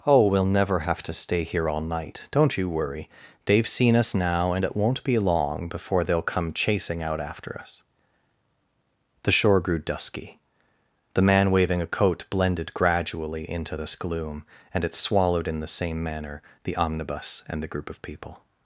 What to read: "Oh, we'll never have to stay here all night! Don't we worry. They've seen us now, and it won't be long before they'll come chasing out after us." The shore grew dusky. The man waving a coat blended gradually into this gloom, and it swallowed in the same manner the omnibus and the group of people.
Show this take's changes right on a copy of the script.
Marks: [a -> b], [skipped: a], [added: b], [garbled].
"Oh, we'll never have to stay here all night! Don't [we -> you] worry. They've seen us now, and it won't be long before they'll come chasing out after us." The shore grew dusky. The man waving a coat blended gradually into this gloom, and it swallowed in the same manner the omnibus and the group of people.